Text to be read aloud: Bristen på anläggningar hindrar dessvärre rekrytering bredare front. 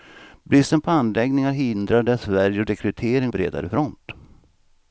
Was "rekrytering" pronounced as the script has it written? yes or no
yes